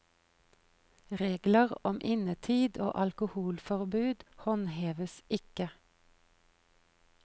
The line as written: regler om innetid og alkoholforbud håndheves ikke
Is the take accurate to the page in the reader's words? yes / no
yes